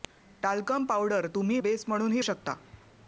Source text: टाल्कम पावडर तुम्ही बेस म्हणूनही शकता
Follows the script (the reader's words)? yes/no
yes